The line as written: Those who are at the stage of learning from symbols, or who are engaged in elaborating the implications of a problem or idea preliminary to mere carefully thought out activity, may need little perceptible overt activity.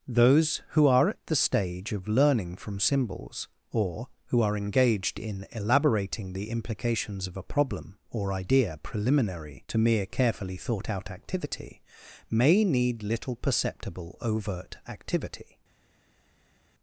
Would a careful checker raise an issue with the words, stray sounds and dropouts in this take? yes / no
no